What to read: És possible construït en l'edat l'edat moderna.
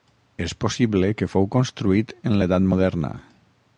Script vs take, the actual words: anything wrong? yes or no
yes